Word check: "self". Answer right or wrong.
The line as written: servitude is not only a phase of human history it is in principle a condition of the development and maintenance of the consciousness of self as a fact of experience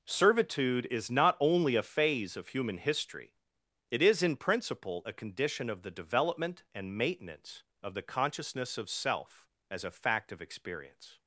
right